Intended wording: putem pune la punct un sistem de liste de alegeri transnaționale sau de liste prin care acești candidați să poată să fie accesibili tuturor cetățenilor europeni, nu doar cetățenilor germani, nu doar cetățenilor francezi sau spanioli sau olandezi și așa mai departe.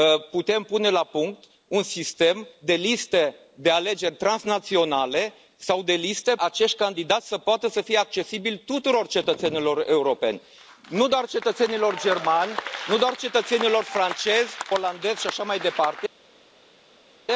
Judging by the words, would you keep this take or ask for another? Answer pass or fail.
fail